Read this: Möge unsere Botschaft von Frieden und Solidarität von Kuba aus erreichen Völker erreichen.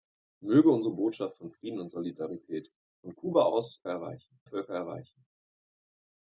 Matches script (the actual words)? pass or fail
pass